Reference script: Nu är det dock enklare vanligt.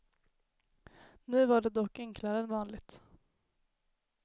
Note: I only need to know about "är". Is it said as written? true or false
false